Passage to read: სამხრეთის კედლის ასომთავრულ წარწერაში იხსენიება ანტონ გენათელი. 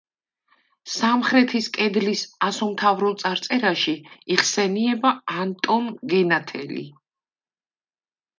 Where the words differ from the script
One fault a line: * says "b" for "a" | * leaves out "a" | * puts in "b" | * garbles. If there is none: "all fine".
all fine